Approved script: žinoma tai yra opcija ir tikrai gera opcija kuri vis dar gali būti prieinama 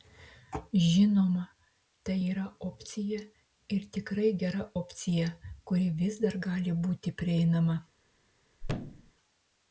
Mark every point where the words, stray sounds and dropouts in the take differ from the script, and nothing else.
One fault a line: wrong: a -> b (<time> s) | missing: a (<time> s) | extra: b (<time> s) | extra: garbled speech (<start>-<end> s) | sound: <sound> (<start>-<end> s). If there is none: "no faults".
sound: thud (8.6-9.1 s)